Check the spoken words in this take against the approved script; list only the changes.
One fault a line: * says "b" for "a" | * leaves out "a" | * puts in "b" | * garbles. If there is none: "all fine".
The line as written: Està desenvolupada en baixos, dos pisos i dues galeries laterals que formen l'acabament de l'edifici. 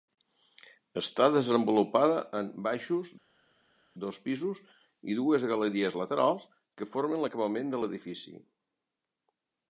all fine